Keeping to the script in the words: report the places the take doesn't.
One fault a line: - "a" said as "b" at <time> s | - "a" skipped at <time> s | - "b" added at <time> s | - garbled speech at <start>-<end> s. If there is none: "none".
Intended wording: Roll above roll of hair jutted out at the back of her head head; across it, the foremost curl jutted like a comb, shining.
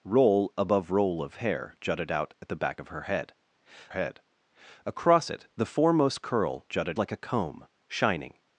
none